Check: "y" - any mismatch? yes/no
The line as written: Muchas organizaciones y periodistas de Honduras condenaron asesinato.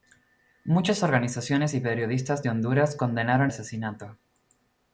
no